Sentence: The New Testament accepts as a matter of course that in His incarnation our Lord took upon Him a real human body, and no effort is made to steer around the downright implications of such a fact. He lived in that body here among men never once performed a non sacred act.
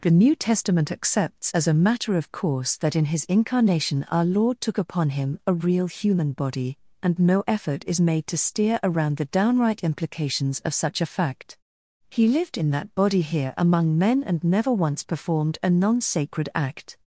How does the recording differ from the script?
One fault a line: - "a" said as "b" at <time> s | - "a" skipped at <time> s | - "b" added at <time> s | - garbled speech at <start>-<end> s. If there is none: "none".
- "and" added at 14.2 s